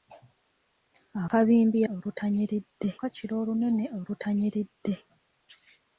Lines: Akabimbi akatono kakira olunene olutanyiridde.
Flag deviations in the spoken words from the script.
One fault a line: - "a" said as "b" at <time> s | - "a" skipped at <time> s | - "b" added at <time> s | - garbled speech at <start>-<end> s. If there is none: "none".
- "akatono" said as "olutanyiridde" at 1.9 s